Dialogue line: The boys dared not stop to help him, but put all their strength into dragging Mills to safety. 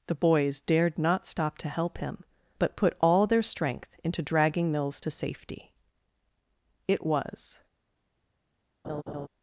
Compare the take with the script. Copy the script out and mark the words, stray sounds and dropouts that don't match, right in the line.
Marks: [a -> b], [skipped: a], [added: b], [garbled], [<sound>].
The boys dared not stop to help him, but put all their strength into dragging Mills to safety. [added: It was] [laugh]